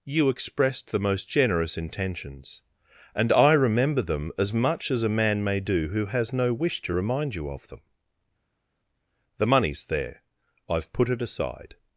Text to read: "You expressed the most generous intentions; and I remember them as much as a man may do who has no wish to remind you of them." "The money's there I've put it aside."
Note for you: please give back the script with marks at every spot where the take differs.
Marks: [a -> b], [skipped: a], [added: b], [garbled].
"You expressed the most generous intentions; and I remember them as much as a man may do who has no wish to remind you of them." "The money's there I've put it aside."